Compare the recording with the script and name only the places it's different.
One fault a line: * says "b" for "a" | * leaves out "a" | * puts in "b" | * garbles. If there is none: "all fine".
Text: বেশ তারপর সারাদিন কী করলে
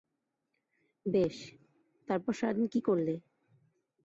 all fine